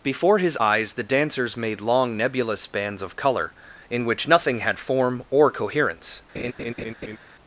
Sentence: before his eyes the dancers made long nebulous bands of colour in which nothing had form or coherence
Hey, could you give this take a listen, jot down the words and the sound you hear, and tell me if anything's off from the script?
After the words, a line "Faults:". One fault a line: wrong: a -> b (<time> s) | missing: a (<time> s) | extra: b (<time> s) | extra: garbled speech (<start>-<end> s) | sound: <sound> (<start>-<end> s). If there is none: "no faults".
before his eyes the dancers made long nebulous bands of colour in which nothing had form or coherence
Faults:
sound: laugh (6.3-7.2 s)